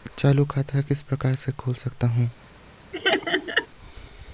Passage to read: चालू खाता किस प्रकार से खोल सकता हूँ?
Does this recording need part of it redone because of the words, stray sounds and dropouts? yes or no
yes